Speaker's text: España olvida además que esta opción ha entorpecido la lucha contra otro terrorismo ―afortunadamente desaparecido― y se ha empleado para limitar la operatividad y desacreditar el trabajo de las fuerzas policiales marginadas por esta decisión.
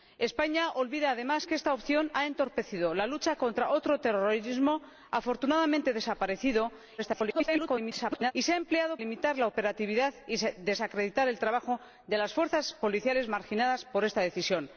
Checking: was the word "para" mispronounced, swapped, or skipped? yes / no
yes